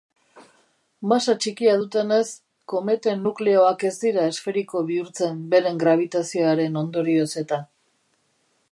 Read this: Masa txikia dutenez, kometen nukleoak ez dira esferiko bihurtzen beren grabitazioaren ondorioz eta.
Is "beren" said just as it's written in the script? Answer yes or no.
yes